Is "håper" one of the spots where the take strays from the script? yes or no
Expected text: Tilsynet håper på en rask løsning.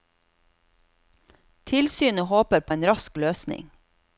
no